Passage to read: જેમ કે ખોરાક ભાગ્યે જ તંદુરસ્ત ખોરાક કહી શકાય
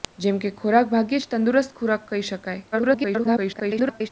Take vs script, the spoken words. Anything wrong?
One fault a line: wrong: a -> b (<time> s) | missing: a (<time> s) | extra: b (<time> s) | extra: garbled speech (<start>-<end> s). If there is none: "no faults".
extra: garbled speech (2.7-4.1 s)